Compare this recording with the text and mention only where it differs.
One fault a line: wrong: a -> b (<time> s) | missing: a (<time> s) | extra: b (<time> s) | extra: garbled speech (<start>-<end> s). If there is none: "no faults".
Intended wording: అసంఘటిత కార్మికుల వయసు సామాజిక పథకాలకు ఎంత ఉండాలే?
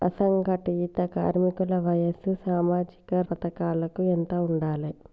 no faults